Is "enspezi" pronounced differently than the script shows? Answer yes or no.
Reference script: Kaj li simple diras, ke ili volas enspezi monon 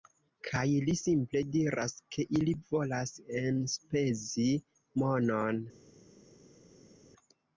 no